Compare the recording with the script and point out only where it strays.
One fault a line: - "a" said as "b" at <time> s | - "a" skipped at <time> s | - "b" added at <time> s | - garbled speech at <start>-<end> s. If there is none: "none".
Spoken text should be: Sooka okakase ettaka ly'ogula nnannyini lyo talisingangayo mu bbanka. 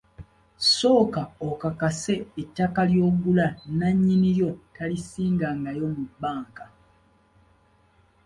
none